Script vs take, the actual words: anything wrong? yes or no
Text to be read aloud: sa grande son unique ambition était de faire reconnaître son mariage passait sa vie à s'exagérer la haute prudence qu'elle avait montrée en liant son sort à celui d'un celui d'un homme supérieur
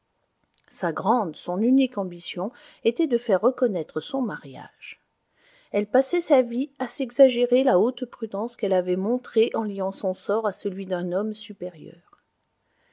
yes